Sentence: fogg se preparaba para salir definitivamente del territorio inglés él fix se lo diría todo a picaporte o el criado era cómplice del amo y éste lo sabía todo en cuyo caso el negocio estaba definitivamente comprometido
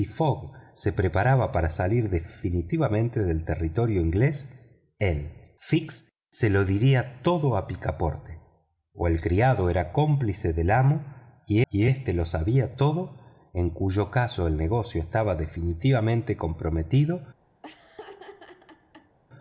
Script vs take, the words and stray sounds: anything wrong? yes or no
yes